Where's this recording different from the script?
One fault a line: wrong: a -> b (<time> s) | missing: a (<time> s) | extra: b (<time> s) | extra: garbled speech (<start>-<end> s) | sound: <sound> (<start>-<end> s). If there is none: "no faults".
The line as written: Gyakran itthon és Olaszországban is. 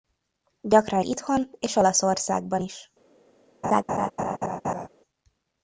sound: laugh (3.6-4.9 s)